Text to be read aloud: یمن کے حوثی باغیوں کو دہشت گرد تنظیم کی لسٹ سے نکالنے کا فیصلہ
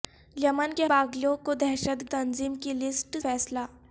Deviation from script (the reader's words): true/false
true